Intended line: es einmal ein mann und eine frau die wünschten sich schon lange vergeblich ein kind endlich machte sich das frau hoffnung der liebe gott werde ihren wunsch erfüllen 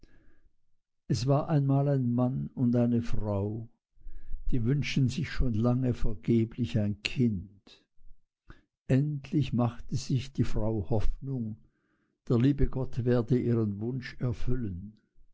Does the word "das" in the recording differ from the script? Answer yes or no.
yes